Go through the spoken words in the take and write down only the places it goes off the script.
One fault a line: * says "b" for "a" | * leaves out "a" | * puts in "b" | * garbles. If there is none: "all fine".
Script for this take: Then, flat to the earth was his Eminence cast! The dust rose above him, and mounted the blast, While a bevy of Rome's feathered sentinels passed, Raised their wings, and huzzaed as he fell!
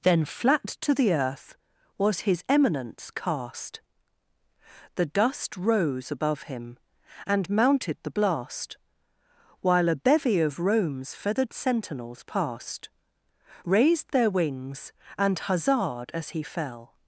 all fine